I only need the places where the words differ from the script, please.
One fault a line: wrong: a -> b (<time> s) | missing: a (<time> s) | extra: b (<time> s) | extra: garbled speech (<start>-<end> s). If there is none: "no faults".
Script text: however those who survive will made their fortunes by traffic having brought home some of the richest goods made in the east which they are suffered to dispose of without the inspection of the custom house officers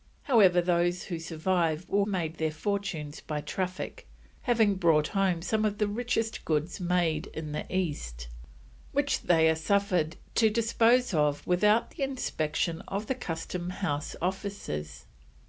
no faults